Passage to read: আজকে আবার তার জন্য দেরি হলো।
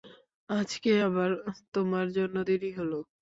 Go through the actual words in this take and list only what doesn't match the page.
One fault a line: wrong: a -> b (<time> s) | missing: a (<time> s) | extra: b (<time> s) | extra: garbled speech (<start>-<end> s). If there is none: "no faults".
wrong: তার -> তোমার (1.7 s)